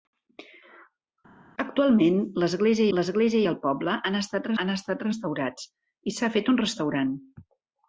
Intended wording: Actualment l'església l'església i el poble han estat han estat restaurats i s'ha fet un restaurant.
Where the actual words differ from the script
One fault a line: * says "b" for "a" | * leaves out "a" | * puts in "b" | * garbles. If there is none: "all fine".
all fine